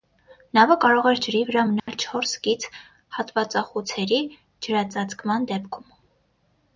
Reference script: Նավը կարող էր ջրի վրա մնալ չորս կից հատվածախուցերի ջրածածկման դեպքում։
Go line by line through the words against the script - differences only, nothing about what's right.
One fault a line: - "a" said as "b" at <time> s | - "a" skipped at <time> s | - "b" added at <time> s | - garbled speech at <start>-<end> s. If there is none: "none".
none